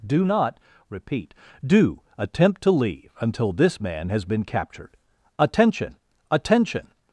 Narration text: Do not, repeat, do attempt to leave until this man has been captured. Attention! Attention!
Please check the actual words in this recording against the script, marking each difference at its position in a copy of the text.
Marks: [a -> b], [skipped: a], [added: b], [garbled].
Do not, repeat, do attempt to leave until this man has been captured. Attention! Attention!